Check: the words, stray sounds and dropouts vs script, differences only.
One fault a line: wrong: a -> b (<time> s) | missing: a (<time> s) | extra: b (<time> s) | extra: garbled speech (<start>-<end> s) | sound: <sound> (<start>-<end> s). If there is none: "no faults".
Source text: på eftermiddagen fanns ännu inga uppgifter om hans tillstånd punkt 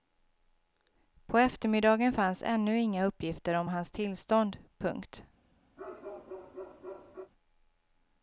sound: bark (5.8-7.3 s)